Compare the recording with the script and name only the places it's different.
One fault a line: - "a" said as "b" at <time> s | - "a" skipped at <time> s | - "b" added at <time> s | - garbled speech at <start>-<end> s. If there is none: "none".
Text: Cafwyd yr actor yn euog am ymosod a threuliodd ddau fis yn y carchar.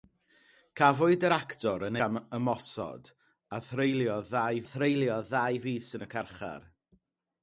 - "euog" skipped at 2.0 s
- "threuliodd ddau" added at 4.7 s